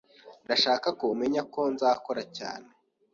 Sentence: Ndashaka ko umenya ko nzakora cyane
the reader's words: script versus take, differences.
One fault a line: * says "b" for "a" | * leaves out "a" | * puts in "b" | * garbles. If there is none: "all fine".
all fine